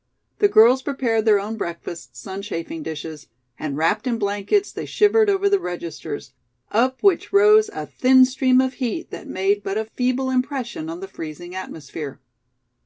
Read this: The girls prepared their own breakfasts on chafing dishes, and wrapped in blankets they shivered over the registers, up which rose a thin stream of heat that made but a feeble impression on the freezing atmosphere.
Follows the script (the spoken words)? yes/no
yes